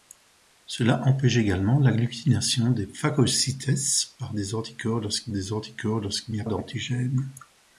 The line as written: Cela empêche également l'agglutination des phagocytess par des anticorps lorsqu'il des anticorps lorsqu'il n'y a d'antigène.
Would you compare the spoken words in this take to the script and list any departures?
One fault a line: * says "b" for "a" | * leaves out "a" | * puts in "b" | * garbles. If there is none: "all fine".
all fine